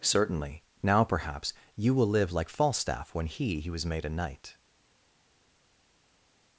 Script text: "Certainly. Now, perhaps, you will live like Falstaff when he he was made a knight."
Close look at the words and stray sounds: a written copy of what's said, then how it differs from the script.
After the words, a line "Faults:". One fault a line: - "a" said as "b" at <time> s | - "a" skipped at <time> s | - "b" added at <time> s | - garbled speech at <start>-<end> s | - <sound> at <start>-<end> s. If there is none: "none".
"Certainly. Now, perhaps, you will live like Falstaff when he he was made a knight."
Faults:
none